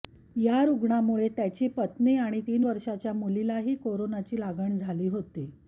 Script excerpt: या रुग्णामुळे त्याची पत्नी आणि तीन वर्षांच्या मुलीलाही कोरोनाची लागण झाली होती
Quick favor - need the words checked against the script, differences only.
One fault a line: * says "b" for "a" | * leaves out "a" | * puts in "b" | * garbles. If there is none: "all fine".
all fine